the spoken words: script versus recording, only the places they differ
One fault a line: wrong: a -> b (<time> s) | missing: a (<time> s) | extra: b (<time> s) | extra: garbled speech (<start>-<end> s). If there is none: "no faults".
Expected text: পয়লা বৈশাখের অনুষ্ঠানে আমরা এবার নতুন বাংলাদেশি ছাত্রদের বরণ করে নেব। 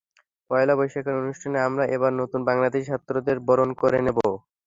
no faults